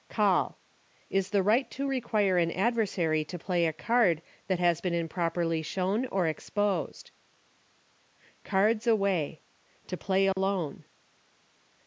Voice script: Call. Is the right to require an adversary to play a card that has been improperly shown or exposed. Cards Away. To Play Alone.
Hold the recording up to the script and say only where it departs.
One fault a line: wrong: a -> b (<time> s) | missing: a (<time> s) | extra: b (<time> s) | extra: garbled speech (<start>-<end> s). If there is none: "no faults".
no faults